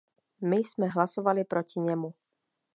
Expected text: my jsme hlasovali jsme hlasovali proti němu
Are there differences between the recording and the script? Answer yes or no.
yes